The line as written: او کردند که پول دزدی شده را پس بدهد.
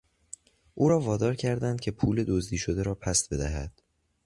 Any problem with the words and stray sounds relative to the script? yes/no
yes